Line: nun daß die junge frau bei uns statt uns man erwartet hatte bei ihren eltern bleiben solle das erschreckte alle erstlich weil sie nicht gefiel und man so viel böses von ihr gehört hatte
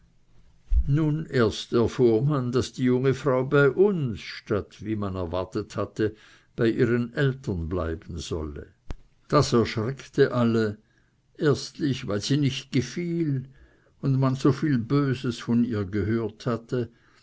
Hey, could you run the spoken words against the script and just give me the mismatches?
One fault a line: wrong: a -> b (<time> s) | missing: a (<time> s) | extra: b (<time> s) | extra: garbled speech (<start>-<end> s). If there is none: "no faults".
extra: erst erfuhr man (1.4 s)
wrong: uns -> wie (4.8 s)